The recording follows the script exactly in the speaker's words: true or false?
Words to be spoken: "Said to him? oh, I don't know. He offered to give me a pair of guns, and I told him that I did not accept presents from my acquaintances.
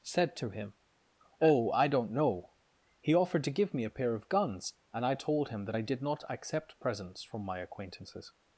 true